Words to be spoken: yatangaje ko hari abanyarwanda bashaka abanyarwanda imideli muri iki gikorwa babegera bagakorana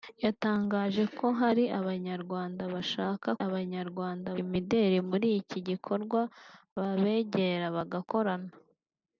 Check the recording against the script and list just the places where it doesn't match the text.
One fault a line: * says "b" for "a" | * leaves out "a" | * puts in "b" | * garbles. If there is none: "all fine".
all fine